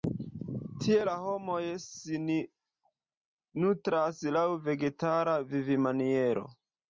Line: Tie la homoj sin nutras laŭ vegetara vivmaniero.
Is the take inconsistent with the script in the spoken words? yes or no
no